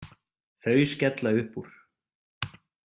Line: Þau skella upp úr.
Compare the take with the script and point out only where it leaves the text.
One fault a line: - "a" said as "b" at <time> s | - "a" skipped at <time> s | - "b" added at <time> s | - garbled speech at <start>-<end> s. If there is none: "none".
none